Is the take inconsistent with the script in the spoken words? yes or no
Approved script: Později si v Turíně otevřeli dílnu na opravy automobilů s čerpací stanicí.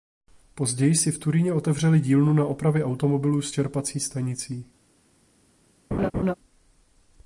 no